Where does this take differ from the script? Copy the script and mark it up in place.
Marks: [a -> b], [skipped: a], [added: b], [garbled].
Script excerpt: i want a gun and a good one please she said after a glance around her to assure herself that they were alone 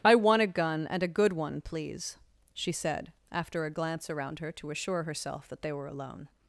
i want a gun and a good one please she said after a glance around her to assure herself that they were alone